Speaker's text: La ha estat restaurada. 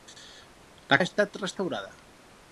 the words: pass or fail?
pass